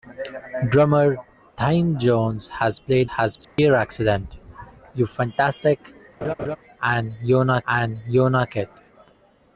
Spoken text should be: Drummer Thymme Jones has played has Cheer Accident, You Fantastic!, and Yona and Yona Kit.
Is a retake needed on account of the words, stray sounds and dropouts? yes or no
yes